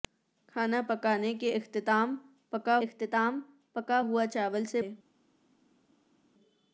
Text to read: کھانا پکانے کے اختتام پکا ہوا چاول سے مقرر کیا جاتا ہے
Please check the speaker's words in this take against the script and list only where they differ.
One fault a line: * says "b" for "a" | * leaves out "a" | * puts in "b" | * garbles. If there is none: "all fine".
* puts in "اختتام پکا"
* leaves out "مقرر کیا جاتا"